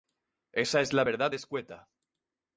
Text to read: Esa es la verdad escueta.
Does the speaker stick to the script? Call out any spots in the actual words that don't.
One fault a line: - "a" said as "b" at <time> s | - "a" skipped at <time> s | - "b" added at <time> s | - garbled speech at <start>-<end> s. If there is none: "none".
none